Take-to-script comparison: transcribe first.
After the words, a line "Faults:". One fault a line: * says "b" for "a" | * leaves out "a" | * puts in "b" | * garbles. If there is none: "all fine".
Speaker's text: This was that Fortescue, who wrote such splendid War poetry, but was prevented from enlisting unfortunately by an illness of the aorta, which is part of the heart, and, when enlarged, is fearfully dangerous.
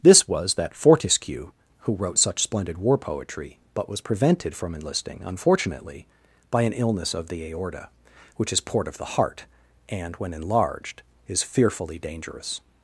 This was that Fortescue, who wrote such splendid War poetry, but was prevented from enlisting unfortunately by an illness of the aorta, which is port of the heart, and, when enlarged, is fearfully dangerous.
Faults:
* says "port" for "part"